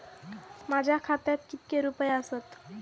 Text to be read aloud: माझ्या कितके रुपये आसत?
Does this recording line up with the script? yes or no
no